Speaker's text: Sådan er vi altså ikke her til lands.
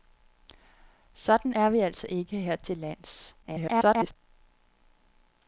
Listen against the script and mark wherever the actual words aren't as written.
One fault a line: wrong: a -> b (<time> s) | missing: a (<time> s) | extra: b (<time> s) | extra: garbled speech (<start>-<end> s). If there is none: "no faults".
extra: garbled speech (3.4-4.2 s)